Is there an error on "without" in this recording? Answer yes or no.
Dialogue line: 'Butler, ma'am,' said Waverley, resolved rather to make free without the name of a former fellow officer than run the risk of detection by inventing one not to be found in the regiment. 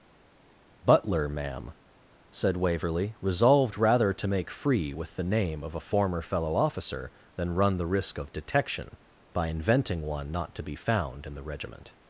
yes